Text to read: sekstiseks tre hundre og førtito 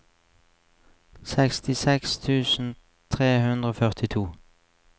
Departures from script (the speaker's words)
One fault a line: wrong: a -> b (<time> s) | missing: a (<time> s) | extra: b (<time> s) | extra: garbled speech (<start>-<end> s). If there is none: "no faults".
extra: tusen (2.2 s)